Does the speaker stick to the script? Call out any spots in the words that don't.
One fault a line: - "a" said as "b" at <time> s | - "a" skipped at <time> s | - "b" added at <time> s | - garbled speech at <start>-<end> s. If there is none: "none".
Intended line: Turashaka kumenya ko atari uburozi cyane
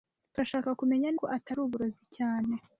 none